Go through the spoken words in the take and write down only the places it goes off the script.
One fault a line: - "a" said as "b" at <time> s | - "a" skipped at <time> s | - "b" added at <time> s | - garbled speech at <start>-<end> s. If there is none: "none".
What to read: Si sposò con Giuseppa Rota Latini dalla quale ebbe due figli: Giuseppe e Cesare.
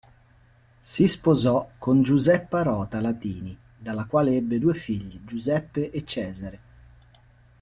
none